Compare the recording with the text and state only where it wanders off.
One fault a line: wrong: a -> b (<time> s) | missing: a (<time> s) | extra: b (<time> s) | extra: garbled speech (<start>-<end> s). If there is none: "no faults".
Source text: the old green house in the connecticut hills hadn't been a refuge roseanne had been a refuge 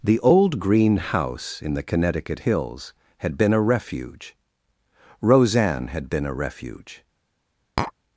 wrong: hadn't -> had (3.2 s)